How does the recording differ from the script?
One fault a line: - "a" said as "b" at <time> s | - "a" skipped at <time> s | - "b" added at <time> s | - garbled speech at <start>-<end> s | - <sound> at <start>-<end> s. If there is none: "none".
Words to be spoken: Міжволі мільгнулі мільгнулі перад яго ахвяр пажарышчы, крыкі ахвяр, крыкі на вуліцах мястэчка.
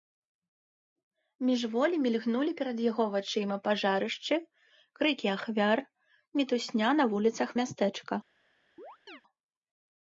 - "мільгнулі" skipped at 2.5 s
- "ахвяр" said as "вачыма" at 3.1 s
- "крыкі" said as "мітусня" at 6.4 s
- chirp at 8.8-9.2 s